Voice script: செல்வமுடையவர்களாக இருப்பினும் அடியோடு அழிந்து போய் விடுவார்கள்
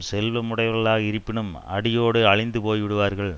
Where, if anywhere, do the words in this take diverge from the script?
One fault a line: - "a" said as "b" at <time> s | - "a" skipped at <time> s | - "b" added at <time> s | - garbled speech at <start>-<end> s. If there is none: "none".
none